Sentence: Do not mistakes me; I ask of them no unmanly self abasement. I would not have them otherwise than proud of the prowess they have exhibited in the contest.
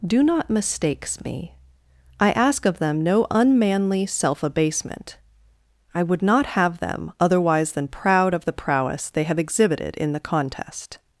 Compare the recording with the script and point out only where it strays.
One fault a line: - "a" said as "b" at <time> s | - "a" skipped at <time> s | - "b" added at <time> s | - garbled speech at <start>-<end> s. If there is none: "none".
none